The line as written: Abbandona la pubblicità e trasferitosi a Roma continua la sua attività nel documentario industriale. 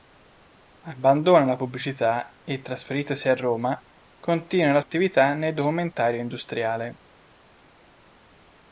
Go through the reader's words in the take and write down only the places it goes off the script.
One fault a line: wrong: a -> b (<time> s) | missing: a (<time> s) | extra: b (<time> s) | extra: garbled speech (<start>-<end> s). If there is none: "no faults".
missing: sua (4.8 s)